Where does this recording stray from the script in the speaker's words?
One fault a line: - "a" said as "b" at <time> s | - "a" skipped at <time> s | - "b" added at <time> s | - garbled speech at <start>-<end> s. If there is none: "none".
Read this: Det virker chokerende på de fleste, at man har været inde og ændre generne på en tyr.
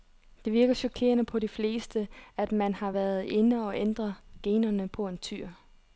none